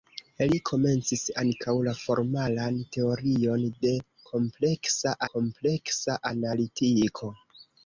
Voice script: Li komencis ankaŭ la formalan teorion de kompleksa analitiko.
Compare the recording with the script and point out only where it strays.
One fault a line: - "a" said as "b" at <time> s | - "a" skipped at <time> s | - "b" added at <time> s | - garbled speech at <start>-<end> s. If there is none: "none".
- "kompleksa" added at 5.3 s